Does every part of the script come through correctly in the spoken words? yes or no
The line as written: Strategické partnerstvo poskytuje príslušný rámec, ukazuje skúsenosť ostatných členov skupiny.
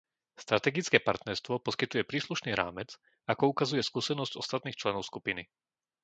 no